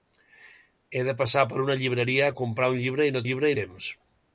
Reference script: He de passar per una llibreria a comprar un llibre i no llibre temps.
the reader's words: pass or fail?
pass